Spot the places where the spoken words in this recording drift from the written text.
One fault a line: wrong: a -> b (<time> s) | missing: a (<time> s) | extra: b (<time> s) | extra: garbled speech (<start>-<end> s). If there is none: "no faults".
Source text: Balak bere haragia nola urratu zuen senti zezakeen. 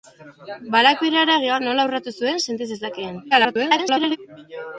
extra: garbled speech (3.3-4.2 s)